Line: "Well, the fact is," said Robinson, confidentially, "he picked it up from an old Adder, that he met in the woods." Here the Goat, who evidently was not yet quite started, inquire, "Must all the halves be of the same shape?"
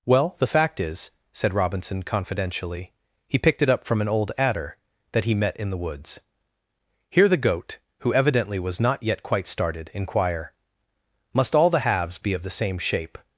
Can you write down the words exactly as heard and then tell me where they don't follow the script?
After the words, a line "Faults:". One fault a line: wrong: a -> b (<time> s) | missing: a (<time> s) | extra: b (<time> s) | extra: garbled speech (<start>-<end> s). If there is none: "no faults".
"Well, the fact is," said Robinson, confidentially, "he picked it up from an old Adder, that he met in the woods." Here the Goat, who evidently was not yet quite started, inquire, "Must all the halves be of the same shape?"
Faults:
no faults